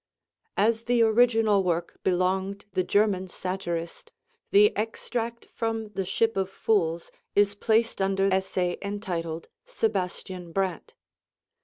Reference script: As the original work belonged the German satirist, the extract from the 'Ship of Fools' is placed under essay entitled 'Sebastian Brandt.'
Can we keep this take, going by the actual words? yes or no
yes